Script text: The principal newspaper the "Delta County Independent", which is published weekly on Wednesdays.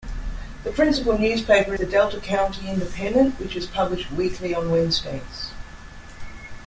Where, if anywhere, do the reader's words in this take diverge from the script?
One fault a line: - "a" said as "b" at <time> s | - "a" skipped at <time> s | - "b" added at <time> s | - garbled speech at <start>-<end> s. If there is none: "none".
none